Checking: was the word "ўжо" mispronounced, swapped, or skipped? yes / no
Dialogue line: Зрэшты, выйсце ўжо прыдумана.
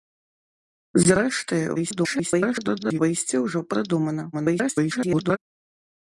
no